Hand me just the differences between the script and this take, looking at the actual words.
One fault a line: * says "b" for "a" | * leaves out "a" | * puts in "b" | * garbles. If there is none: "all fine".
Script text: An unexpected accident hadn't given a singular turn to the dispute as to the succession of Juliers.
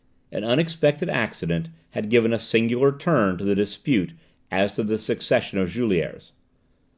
* says "had" for "hadn't"